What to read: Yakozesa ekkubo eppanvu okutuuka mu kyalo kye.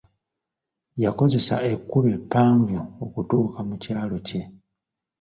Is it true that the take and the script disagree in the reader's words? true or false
false